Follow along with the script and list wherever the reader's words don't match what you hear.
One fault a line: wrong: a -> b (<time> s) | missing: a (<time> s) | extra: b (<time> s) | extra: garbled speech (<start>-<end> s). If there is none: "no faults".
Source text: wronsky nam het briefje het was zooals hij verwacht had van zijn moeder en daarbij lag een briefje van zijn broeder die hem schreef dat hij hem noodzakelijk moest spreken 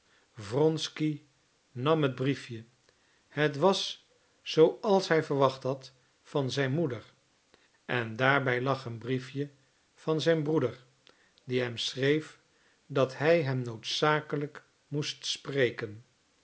no faults